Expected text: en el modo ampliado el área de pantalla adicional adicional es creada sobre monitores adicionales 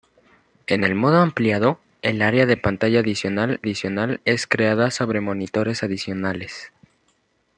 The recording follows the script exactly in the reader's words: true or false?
true